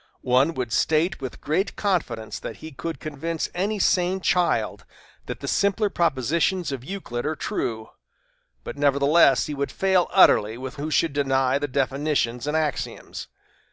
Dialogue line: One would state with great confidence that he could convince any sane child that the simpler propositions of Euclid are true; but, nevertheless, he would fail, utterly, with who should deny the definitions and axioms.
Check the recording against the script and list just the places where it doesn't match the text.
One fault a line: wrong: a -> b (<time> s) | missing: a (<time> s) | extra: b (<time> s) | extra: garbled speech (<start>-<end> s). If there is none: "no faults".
no faults